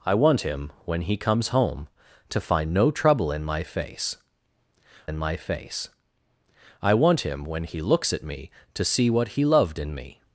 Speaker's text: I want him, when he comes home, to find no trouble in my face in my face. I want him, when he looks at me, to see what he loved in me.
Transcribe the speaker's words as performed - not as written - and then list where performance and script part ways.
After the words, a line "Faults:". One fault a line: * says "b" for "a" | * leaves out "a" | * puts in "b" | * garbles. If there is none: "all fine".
I want him, when he comes home, to find no trouble in my face in my face. I want him, when he looks at me, to see what he loved in me.
Faults:
all fine